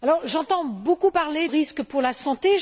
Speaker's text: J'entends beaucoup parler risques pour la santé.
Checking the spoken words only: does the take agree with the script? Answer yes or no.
yes